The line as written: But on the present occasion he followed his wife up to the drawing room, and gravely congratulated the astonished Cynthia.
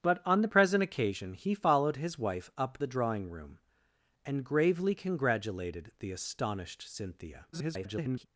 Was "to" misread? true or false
true